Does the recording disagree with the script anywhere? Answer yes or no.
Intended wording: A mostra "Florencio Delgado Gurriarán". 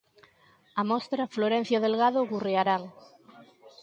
no